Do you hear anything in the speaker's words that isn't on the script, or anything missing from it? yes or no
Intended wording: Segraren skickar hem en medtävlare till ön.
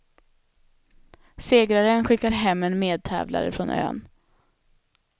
yes